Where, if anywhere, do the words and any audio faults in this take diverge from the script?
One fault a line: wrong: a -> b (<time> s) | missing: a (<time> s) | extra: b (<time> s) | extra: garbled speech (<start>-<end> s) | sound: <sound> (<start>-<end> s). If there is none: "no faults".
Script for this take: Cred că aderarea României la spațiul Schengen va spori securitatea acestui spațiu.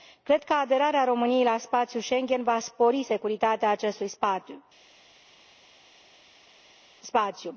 no faults